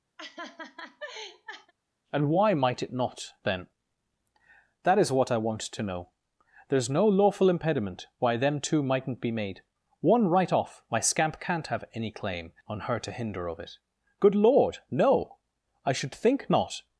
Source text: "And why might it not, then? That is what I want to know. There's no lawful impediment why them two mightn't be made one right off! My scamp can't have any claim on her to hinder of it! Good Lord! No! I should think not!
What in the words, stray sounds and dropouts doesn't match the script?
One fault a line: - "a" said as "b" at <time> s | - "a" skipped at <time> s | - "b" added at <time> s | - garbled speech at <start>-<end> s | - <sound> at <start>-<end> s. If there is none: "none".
- laugh at 0.2-1.7 s